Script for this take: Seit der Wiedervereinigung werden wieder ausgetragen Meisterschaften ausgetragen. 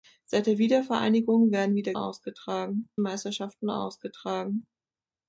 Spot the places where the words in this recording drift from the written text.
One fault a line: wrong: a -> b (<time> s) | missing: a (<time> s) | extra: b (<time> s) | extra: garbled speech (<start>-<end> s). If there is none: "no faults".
no faults